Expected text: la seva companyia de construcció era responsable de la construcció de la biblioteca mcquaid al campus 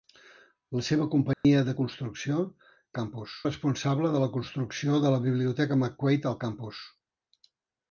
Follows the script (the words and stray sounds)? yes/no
no